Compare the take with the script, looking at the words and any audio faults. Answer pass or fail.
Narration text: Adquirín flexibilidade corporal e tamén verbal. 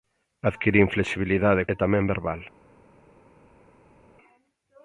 fail